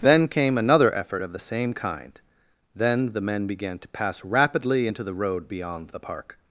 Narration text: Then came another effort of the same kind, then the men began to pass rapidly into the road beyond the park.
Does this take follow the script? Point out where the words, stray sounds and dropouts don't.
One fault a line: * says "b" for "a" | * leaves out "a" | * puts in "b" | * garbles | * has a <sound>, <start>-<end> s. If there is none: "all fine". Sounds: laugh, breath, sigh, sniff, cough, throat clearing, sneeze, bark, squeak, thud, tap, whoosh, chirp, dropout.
all fine